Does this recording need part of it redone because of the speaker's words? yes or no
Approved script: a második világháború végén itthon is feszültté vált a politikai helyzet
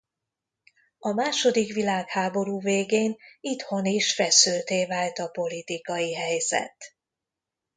no